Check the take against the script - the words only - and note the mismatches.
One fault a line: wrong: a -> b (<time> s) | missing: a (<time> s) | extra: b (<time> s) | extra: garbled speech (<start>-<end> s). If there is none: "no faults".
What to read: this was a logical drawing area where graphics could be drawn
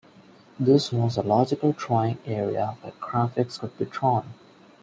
no faults